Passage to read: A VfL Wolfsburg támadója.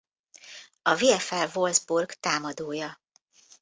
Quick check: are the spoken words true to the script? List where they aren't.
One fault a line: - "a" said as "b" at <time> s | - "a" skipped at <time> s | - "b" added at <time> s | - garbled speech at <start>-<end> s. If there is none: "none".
none